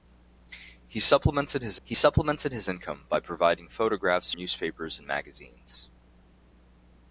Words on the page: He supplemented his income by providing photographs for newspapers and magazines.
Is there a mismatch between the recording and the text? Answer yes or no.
yes